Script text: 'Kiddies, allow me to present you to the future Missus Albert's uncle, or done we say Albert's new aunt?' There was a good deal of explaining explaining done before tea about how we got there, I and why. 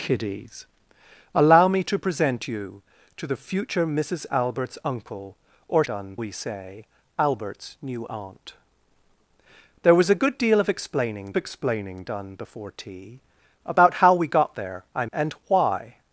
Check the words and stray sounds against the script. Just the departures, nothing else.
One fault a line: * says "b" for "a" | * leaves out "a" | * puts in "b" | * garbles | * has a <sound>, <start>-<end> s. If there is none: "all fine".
all fine